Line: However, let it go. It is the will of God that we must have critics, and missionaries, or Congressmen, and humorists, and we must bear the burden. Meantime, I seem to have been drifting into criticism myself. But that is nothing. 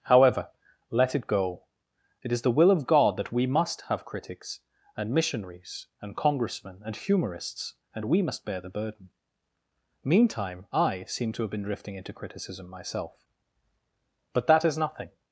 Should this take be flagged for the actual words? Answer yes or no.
yes